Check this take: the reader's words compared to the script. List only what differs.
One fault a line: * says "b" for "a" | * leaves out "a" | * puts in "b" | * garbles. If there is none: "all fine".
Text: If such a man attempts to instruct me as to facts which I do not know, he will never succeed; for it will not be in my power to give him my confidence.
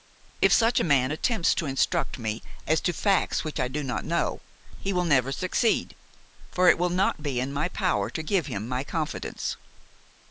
all fine